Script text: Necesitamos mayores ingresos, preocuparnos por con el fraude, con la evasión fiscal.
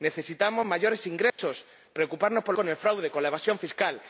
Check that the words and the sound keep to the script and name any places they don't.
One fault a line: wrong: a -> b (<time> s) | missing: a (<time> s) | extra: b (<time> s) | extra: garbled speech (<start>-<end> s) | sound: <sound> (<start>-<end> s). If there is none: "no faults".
sound: dropout (1.3-1.4 s)